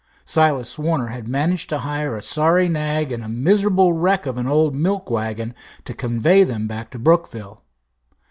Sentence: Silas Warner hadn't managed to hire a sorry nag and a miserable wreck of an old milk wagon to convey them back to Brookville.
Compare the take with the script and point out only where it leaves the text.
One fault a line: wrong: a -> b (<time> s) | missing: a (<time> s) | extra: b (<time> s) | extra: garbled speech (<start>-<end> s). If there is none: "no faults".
wrong: hadn't -> had (1.1 s)